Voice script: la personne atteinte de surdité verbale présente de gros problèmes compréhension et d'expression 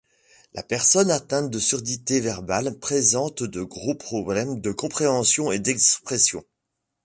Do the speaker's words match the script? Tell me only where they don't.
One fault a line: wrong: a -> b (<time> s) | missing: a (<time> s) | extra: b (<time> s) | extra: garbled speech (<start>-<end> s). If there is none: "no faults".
extra: de (4.6 s)